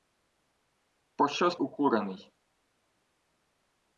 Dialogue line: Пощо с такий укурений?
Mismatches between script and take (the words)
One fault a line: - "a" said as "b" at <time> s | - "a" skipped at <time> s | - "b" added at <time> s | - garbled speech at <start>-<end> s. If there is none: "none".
- "такий" skipped at 1.6 s